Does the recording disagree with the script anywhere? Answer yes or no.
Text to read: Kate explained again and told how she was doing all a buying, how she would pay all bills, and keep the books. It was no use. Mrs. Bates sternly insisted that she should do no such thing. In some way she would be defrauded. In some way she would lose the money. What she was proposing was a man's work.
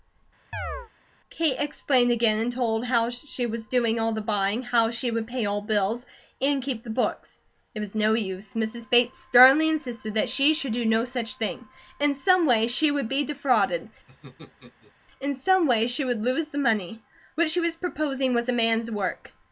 yes